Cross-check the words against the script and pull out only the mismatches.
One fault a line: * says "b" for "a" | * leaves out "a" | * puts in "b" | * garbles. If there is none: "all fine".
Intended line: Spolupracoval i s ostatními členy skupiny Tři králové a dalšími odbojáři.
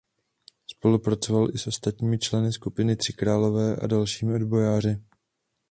all fine